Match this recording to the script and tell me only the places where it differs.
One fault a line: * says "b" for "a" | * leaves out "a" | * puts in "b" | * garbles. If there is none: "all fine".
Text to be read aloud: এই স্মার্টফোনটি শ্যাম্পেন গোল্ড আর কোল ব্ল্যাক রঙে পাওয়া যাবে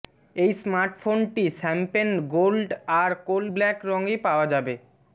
all fine